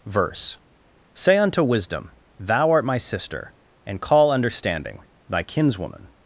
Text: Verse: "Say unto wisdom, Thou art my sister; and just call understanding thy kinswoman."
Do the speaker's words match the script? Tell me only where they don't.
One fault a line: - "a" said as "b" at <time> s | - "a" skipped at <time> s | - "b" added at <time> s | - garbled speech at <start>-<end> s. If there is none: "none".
- "just" skipped at 4.0 s